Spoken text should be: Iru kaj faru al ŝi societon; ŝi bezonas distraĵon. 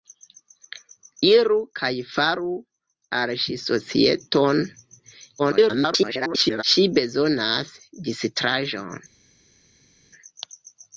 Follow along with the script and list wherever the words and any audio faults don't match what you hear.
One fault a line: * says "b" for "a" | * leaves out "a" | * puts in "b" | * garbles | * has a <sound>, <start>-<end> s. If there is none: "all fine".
* garbles